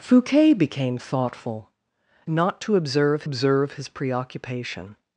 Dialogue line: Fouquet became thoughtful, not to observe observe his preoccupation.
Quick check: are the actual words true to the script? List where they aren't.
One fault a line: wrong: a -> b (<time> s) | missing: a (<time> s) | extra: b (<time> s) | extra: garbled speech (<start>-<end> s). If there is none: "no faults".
no faults